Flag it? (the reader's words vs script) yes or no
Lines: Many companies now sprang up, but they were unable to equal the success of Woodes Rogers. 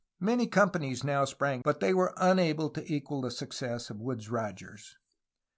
yes